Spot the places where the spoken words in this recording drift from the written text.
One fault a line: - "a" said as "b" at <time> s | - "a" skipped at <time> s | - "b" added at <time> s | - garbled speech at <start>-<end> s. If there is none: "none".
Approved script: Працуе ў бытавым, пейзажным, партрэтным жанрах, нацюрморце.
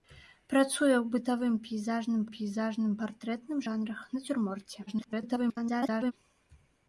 - "пейзажным" added at 2.4 s
- garbled speech at 4.9-6.1 s